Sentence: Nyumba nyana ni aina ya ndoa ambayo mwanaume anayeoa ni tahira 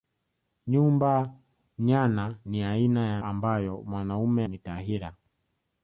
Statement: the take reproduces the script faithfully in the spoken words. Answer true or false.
false